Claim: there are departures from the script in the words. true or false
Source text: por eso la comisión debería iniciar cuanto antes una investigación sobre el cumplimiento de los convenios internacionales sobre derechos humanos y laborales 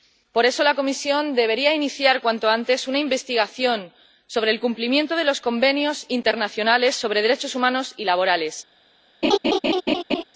false